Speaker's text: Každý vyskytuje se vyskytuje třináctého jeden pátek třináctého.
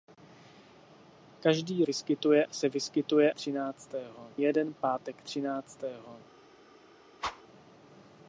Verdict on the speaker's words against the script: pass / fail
pass